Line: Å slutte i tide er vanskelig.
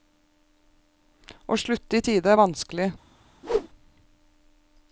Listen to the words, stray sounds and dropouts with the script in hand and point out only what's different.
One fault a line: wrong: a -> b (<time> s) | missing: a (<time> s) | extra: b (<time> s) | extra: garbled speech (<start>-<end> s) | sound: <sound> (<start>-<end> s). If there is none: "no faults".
sound: whoosh (3.4-3.7 s)